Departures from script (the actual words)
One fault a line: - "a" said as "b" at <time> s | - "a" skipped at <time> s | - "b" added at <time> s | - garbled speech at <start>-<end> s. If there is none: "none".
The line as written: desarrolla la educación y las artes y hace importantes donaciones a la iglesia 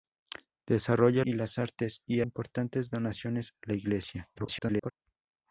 - "la educación" skipped at 1.2 s
- "hace" skipped at 2.2 s
- garbled speech at 4.4-4.9 s